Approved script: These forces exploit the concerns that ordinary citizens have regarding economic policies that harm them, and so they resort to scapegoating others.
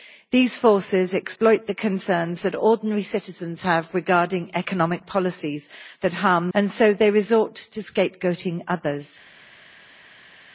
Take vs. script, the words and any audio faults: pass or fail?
fail